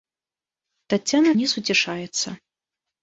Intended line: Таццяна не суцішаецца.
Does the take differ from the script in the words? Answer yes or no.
no